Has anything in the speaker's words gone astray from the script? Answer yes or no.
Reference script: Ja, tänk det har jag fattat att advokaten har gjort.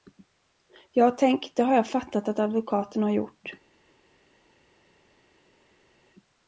no